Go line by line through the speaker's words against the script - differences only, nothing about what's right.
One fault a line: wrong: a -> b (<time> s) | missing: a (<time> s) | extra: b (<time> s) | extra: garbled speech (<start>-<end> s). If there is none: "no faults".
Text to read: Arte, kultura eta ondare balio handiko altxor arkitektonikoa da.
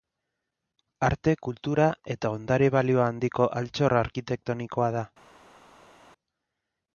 no faults